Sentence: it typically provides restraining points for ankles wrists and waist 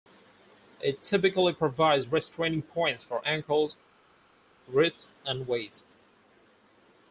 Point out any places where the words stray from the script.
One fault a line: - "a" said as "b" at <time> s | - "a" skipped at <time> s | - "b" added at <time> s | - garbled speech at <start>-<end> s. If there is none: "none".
none